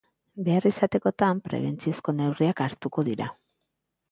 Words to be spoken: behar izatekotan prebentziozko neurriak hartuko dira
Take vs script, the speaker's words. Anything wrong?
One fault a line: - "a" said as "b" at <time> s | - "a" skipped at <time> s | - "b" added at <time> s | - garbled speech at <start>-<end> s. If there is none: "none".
none